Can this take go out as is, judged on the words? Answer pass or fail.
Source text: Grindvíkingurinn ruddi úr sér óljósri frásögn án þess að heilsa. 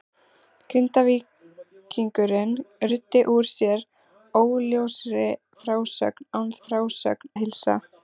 fail